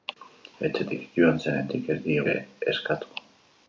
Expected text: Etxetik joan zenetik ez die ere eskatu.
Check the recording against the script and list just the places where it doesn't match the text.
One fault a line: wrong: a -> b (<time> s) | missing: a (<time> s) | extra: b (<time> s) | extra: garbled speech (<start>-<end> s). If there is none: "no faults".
no faults